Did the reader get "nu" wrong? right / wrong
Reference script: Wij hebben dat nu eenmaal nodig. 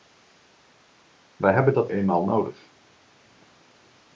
wrong